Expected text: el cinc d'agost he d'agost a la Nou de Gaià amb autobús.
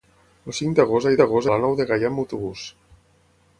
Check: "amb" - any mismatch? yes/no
no